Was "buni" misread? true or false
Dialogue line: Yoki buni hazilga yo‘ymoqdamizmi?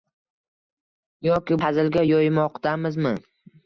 true